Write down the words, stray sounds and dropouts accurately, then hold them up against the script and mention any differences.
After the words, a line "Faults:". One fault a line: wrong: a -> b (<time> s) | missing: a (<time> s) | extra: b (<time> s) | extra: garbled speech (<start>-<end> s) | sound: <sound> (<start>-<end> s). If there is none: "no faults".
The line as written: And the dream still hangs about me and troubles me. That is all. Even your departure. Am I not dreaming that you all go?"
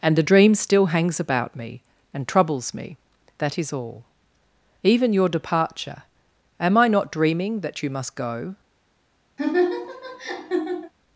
And the dream still hangs about me and troubles me. That is all. Even your departure. Am I not dreaming that you must go?"
Faults:
wrong: all -> must (7.9 s)
sound: laugh (9.4-10.9 s)